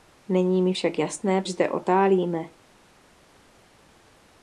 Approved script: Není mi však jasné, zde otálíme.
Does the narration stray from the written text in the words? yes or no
no